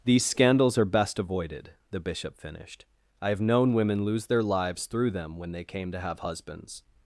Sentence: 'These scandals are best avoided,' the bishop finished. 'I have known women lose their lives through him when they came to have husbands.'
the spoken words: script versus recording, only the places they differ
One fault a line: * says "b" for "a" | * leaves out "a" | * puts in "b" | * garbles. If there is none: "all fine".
* says "them" for "him"